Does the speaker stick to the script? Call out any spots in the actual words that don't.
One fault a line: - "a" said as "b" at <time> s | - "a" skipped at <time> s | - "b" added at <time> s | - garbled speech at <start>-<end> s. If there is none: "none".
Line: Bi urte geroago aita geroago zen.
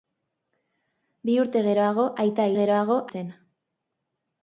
none